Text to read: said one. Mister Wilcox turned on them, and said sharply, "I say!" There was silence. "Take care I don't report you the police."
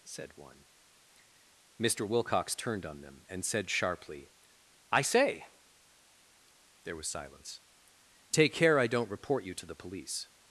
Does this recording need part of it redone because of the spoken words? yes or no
yes